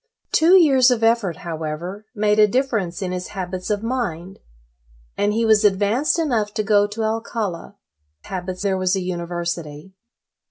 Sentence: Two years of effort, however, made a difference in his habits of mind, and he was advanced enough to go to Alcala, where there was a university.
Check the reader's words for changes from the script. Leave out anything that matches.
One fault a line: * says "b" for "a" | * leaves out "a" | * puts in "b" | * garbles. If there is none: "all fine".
* says "habits" for "where"